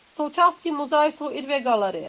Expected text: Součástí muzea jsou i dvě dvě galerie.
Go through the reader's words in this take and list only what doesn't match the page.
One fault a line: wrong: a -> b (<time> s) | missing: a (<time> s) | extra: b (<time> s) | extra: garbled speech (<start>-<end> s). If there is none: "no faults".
missing: dvě (1.6 s)